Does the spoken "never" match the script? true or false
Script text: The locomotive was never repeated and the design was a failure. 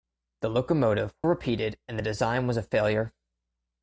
false